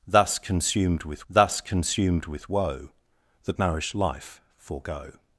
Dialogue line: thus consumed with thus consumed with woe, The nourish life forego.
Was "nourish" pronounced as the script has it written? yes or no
yes